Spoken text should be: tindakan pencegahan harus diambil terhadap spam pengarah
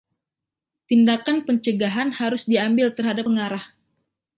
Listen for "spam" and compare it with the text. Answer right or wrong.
wrong